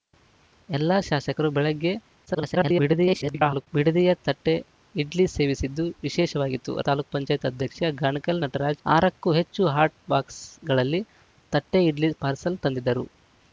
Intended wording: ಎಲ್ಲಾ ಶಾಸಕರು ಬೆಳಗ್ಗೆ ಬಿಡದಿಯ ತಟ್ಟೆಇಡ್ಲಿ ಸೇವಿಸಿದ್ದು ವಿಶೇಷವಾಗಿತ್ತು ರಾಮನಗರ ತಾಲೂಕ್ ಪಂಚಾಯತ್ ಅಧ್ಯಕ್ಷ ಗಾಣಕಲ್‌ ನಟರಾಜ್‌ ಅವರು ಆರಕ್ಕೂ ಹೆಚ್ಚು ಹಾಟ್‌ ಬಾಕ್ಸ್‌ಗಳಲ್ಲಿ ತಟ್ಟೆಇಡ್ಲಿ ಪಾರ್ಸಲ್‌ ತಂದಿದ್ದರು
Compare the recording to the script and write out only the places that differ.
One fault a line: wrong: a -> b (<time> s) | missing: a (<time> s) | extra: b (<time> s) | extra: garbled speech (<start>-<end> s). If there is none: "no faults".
extra: garbled speech (2.3-3.7 s)
missing: ರಾಮನಗರ (6.7 s)
missing: ಅವರು (8.8 s)